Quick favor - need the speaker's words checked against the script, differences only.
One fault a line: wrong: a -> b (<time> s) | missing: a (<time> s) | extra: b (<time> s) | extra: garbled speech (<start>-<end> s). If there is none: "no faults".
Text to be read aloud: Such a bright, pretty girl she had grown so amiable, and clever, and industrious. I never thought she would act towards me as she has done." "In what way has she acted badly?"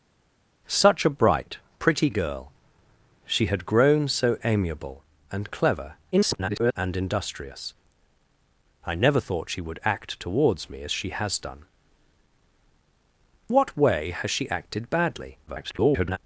extra: garbled speech (6.1-6.7 s)
missing: In (11.6 s)
extra: garbled speech (15.5-16.2 s)